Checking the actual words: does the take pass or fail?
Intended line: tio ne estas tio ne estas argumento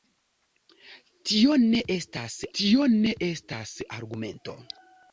pass